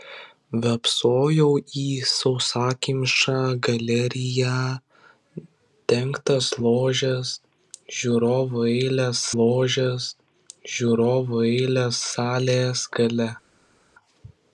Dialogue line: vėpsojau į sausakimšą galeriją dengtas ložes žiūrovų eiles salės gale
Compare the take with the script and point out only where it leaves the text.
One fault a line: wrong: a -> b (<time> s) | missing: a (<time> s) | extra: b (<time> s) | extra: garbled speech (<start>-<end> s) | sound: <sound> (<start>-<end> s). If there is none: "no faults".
extra: ložes žiūrovų eiles (9.4 s)